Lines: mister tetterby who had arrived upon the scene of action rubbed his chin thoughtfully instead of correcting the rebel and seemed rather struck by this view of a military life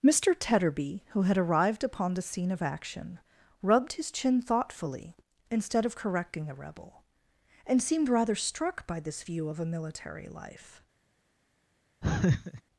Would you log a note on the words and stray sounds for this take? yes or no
yes